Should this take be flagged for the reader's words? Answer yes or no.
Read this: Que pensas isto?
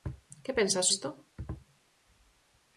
no